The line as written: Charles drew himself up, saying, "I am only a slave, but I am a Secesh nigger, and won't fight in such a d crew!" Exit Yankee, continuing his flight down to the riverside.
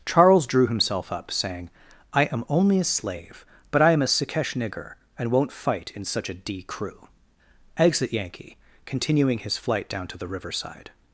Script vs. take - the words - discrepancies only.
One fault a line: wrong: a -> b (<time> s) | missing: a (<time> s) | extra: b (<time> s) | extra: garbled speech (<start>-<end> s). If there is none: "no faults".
no faults